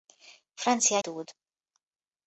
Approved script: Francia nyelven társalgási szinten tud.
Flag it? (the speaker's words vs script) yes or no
yes